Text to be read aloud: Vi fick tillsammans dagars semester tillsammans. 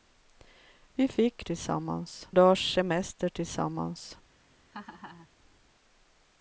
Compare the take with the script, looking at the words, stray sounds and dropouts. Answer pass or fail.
fail